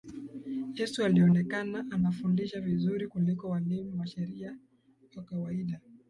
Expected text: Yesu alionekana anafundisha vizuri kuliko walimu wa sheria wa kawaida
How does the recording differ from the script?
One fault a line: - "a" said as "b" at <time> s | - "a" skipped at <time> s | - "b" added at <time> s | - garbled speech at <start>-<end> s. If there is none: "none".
none